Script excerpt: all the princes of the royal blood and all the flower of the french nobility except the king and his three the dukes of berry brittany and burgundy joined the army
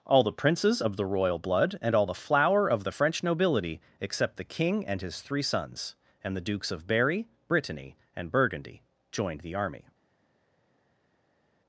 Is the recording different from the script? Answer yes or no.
yes